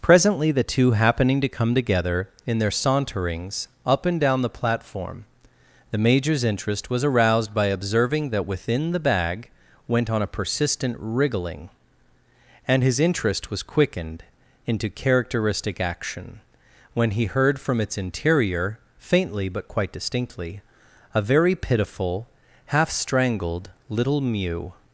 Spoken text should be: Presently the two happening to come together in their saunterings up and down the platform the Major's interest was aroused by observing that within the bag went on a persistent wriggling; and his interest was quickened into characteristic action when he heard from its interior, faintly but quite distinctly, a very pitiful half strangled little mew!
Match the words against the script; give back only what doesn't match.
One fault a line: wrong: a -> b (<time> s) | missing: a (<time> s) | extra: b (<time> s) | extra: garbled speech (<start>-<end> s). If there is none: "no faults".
no faults